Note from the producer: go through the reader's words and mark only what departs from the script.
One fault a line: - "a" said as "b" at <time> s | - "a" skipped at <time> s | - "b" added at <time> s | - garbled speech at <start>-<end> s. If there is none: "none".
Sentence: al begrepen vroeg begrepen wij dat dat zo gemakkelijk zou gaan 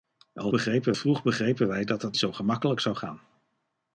none